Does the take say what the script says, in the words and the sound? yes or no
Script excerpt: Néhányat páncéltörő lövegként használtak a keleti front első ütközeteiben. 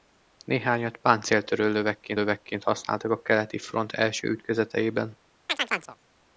no